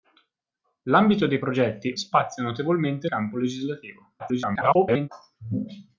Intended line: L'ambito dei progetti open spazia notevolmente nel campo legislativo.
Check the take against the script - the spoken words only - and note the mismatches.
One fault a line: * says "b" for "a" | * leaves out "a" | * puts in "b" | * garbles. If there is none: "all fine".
* leaves out "open"
* leaves out "nel"
* garbles